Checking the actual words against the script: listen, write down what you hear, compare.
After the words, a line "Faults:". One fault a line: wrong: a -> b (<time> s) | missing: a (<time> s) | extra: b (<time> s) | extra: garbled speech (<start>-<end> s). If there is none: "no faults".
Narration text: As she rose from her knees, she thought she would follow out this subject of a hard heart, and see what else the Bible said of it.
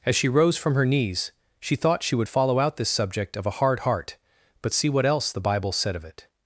As she rose from her knees, she thought she would follow out this subject of a hard heart, but see what else the Bible said of it.
Faults:
wrong: and -> but (4.6 s)